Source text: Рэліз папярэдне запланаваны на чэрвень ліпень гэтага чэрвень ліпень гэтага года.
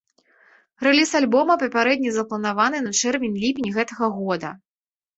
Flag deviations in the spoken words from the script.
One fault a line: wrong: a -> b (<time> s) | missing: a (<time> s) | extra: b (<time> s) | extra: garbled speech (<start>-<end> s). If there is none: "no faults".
extra: альбома (1.2 s)
missing: чэрвень ліпень гэтага (4.1 s)